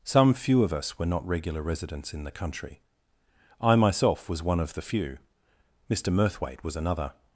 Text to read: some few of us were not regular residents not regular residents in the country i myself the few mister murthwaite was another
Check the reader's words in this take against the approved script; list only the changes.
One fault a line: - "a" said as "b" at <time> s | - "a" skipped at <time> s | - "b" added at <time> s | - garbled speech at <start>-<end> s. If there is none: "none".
- "not regular residents" skipped at 2.1 s
- "was one of" added at 4.3 s